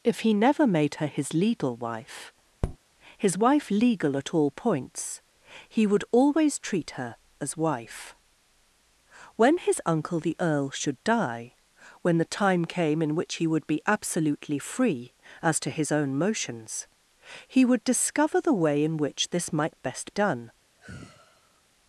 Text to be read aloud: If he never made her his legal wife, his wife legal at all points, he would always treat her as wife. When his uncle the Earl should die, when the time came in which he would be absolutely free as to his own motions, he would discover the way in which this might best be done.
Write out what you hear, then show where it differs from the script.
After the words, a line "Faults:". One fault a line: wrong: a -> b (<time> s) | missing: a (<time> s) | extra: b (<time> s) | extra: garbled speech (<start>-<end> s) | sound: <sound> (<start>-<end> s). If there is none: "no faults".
If he never made her his legal wife, his wife legal at all points, he would always treat her as wife. When his uncle the Earl should die, when the time came in which he would be absolutely free as to his own motions, he would discover the way in which this might best done.
Faults:
sound: tap (2.6-2.8 s)
missing: be (20.1 s)
sound: sigh (20.8-21.6 s)